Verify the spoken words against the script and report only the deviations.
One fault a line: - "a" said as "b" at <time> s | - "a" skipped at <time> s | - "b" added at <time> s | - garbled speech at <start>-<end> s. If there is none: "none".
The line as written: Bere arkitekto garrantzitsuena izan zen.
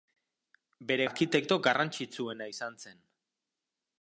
none